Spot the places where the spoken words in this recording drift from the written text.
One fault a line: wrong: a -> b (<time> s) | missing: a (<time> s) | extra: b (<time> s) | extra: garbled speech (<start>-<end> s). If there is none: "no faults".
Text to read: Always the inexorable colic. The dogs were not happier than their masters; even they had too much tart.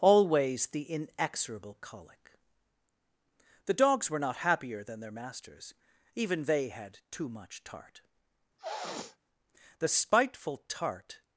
extra: The spiteful tart (9.8 s)